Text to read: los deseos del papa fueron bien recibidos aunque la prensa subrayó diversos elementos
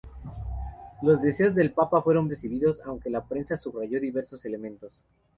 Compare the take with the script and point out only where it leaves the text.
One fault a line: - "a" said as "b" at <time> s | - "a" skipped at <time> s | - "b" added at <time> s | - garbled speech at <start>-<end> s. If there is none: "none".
- "bien" skipped at 2.3 s